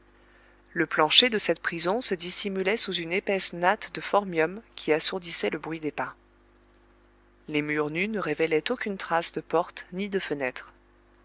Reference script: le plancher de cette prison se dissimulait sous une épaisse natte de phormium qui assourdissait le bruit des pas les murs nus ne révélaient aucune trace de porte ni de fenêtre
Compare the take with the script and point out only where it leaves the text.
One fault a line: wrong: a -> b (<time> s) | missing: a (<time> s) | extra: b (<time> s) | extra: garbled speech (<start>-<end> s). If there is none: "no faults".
no faults